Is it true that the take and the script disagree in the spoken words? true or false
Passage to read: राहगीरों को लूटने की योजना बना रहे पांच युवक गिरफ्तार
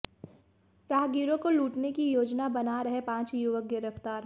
false